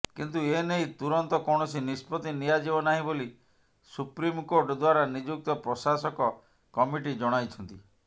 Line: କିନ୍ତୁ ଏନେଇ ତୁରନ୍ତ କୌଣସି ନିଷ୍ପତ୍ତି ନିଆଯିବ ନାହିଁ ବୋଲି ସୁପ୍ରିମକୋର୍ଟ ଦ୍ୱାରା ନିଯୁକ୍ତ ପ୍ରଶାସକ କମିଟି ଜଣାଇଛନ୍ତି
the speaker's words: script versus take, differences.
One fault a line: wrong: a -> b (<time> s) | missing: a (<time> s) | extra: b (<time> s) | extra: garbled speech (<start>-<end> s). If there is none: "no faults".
no faults